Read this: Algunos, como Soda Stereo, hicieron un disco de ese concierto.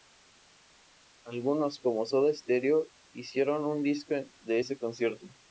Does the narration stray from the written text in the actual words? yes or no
no